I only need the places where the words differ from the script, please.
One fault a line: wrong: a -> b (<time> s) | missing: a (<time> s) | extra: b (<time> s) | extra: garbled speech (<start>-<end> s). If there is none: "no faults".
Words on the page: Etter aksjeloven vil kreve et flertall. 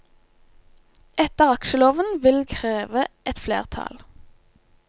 no faults